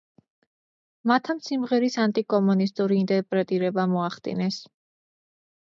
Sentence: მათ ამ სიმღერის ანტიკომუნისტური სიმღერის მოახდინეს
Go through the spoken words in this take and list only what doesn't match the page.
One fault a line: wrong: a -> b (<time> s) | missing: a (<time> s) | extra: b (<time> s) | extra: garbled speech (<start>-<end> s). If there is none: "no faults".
wrong: სიმღერის -> ინტერპრეტირება (3.0 s)